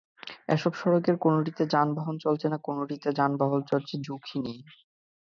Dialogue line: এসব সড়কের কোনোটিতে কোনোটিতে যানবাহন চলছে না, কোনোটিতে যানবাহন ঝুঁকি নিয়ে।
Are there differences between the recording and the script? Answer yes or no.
yes